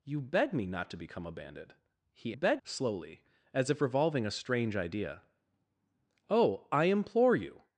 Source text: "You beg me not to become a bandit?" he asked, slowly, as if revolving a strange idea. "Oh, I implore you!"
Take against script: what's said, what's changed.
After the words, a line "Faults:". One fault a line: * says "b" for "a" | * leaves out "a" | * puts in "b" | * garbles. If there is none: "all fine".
"You beg me not to become a bandit?" he beg, slowly, as if revolving a strange idea. "Oh, I implore you!"
Faults:
* says "beg" for "asked"